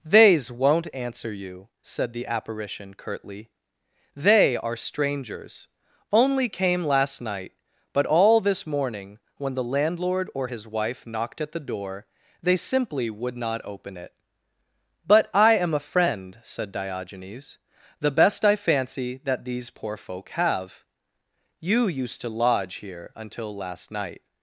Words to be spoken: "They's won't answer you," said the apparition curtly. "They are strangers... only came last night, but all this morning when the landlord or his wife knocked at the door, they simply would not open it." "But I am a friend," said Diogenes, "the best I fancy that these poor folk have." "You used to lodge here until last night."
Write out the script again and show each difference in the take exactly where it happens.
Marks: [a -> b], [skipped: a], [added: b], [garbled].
"They's won't answer you," said the apparition curtly. "They are strangers... only came last night, but all this morning when the landlord or his wife knocked at the door, they simply would not open it." "But I am a friend," said Diogenes, "the best I fancy that these poor folk have." "You used to lodge here until last night."